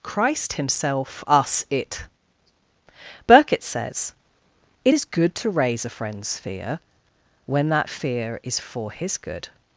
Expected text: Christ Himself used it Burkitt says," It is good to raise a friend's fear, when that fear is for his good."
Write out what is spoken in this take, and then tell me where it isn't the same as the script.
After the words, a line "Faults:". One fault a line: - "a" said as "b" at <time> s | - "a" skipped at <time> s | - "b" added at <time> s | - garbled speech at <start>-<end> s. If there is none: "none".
Christ Himself us it Burkitt says," It is good to raise a friend's fear, when that fear is for his good."
Faults:
- "used" said as "us" at 1.3 s